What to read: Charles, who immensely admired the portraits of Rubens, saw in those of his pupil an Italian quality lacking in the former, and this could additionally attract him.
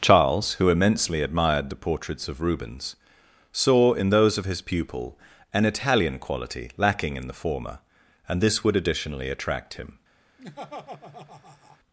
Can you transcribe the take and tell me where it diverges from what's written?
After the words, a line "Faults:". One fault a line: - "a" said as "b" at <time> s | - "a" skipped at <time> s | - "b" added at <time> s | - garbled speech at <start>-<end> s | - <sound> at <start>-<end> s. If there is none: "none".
Charles, who immensely admired the portraits of Rubens, saw in those of his pupil an Italian quality lacking in the former, and this would additionally attract him.
Faults:
- "could" said as "would" at 8.6 s
- laugh at 10.4-11.8 s